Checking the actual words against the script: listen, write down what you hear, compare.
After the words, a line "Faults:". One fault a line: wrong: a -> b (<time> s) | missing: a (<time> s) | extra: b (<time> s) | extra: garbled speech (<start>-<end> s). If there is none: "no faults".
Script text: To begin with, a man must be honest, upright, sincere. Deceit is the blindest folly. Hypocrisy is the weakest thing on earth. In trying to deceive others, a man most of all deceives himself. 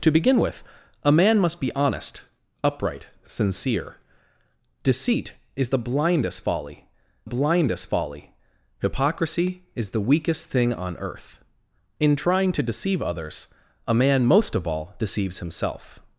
To begin with, a man must be honest, upright, sincere. Deceit is the blindest folly blindest folly. Hypocrisy is the weakest thing on earth. In trying to deceive others, a man most of all deceives himself.
Faults:
extra: blindest folly (7.2 s)